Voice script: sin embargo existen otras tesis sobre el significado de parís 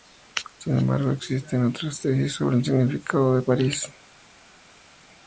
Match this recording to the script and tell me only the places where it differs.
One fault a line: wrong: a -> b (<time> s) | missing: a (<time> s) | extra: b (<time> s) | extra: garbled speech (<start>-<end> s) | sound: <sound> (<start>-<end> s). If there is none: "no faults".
no faults